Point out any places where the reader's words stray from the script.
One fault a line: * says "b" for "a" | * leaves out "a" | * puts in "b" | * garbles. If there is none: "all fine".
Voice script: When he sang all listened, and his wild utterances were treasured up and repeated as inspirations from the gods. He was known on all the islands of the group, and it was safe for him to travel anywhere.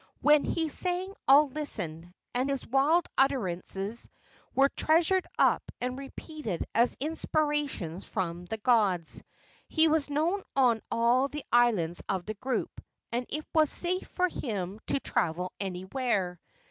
all fine